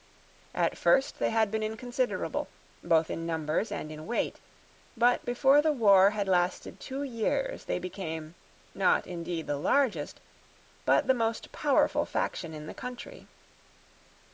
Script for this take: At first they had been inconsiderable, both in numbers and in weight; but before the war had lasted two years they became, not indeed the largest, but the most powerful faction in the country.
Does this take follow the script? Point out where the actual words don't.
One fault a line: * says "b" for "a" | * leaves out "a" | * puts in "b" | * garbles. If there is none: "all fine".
all fine